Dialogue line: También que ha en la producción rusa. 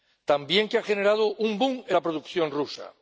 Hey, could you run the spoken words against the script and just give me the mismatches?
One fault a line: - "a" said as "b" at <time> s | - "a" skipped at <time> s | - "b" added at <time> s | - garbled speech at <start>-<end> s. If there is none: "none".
- "generado un boom" added at 0.8 s